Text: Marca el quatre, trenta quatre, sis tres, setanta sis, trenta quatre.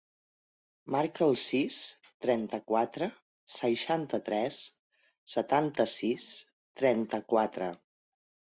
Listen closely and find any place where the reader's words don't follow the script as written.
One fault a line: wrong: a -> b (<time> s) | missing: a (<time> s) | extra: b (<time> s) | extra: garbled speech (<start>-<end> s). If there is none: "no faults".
wrong: quatre -> sis (1.4 s)
wrong: sis -> seixanta (3.6 s)